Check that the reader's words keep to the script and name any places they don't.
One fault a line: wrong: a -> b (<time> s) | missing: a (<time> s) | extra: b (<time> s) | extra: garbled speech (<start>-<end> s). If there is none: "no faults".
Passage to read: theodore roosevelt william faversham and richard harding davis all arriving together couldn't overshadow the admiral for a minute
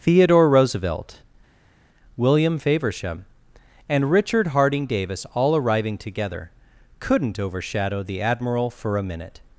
no faults